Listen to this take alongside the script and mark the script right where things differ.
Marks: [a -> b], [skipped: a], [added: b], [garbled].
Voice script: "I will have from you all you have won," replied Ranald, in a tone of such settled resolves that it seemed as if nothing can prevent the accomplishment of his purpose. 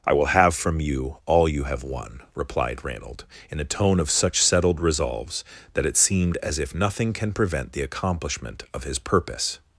"I will have from you all you have won," replied Ranald, in a tone of such settled resolves that it seemed as if nothing can prevent the accomplishment of his purpose.